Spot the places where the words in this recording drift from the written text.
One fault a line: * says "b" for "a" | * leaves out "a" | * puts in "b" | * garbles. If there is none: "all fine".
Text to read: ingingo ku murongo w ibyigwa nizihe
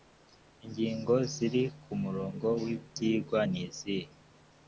* puts in "ziri"